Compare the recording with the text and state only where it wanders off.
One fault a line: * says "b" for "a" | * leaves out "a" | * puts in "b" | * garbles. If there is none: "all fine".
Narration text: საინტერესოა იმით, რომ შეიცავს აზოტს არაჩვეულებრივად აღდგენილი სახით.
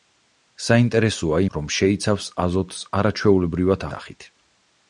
* leaves out "იმით"
* leaves out "აღდგენილი"